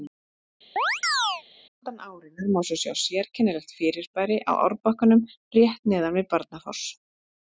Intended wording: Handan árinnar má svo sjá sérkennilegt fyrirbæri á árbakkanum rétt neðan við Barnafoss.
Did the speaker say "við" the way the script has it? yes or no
yes